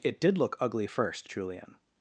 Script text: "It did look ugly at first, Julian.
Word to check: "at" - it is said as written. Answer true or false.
false